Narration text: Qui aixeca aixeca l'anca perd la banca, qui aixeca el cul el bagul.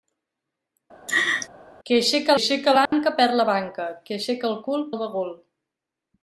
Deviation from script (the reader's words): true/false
false